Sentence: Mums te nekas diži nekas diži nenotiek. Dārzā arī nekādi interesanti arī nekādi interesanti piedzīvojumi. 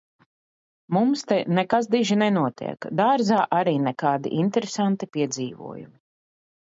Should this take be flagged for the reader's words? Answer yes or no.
yes